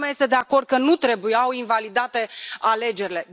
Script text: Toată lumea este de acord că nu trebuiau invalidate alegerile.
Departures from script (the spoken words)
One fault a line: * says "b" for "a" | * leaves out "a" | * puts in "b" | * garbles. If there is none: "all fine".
all fine